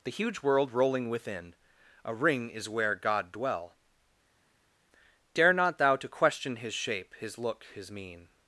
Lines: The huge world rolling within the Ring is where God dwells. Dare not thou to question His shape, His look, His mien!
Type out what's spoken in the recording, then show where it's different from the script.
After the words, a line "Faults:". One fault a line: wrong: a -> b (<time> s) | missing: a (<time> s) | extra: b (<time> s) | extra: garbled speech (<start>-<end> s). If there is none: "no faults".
The huge world rolling within a Ring is where God dwell. Dare not thou to question His shape, His look, His mien!
Faults:
wrong: the -> a (2.0 s)
wrong: dwells -> dwell (3.3 s)